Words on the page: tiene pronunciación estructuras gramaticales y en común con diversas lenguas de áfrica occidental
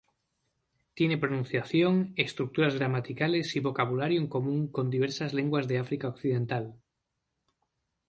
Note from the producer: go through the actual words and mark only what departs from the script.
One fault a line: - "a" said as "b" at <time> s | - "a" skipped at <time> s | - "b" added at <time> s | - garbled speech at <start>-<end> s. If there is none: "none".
- "vocabulario" added at 3.6 s